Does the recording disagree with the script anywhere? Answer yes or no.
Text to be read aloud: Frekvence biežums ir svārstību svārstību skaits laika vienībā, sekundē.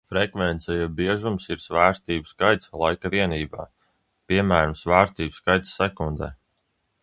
yes